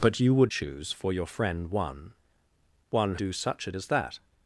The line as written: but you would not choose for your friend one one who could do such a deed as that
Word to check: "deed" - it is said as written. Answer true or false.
false